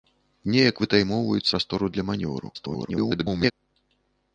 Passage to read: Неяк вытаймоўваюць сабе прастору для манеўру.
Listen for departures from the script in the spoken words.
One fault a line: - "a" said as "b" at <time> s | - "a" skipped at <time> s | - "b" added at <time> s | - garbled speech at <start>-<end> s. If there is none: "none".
- "сабе" skipped at 1.5 s
- garbled speech at 2.5-3.5 s